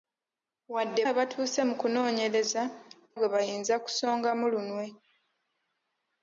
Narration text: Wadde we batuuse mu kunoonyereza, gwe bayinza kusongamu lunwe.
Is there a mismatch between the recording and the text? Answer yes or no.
no